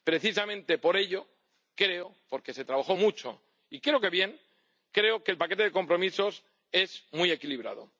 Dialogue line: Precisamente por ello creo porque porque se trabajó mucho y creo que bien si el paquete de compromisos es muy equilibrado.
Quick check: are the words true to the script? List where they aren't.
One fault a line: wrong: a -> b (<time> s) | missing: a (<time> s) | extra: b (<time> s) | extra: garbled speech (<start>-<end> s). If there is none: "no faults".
missing: porque (2.5 s)
wrong: si -> que (4.9 s)